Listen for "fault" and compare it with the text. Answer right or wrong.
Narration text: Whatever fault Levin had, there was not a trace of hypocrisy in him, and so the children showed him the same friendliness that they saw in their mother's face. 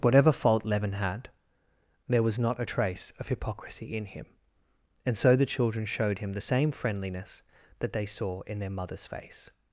right